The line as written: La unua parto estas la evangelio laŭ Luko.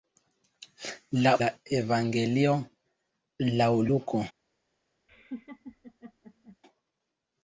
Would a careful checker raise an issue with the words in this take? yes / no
yes